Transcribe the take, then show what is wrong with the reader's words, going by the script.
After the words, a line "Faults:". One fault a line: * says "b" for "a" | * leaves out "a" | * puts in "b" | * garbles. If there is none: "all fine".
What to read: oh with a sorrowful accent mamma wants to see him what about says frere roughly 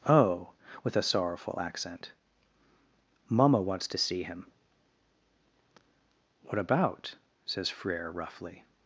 oh with a sorrowful accent mamma wants to see him what about says frere roughly
Faults:
all fine